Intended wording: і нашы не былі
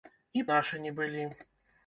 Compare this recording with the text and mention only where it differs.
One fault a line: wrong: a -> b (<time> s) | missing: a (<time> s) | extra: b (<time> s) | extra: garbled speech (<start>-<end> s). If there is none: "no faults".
no faults